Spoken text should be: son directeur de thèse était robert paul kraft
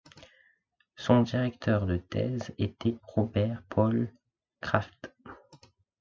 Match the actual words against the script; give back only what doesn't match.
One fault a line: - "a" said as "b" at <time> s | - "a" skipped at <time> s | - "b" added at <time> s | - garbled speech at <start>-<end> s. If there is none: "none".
none